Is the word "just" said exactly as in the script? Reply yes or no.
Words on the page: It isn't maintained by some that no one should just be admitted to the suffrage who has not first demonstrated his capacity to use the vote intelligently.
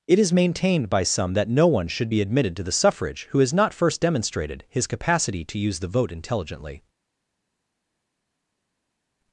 no